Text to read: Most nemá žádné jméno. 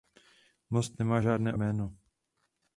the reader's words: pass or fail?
pass